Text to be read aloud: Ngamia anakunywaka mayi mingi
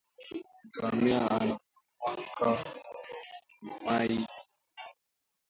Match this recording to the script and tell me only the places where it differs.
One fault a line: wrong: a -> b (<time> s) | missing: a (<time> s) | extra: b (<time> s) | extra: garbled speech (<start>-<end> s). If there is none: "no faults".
no faults